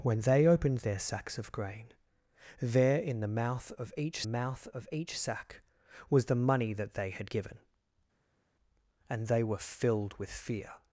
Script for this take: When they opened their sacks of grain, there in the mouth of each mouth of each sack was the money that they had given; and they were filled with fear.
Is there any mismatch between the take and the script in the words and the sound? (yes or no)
no